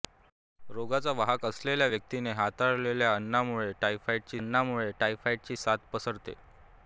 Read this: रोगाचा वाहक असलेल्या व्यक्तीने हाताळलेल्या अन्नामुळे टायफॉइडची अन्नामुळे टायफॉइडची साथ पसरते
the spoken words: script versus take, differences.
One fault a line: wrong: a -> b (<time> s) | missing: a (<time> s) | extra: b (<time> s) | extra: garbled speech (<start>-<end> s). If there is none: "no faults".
no faults